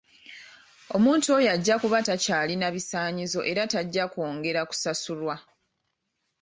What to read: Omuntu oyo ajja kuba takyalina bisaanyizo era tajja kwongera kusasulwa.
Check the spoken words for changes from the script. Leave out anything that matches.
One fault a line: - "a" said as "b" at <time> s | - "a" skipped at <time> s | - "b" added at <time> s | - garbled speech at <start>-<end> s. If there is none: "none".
none